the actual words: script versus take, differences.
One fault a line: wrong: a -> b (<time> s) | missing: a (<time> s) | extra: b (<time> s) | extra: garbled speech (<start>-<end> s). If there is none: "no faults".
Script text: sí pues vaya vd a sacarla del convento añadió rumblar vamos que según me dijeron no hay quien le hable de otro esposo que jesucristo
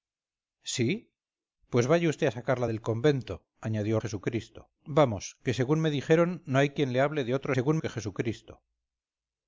wrong: rumblar -> jesucristo (4.0 s)
wrong: esposo -> según (7.5 s)